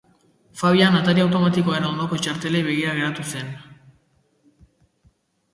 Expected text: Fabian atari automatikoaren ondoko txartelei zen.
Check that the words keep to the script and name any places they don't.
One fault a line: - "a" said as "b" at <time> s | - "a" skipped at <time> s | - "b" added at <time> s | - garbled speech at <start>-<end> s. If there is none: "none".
- "begira geratu" added at 2.7 s